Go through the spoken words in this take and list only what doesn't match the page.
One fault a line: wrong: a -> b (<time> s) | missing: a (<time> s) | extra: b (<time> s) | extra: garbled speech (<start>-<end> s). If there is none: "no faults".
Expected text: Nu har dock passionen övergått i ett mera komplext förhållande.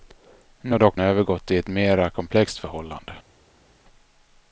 missing: passionen (1.0 s)